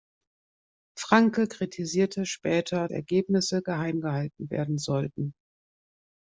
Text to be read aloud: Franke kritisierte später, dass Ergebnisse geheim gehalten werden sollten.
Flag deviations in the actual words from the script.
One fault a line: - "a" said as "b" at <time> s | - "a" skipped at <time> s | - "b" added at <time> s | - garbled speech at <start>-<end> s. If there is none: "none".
- "dass" skipped at 2.9 s